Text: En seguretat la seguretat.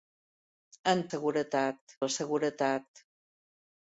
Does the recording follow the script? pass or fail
pass